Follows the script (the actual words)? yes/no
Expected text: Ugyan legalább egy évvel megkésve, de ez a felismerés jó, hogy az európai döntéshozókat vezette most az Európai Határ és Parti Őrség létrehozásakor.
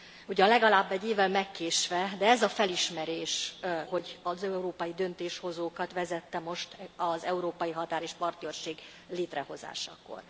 no